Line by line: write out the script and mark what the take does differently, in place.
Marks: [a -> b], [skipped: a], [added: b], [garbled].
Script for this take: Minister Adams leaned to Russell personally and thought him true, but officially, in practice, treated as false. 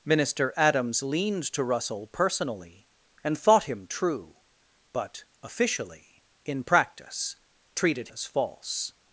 Minister Adams leaned to Russell personally and thought him true, but officially, in practice, treated as false.